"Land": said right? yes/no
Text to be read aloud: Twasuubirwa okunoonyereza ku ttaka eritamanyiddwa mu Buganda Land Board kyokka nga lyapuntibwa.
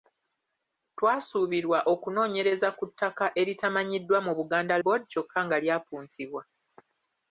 no